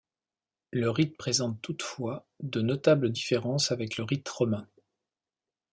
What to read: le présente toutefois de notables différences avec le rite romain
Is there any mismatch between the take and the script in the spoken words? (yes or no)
yes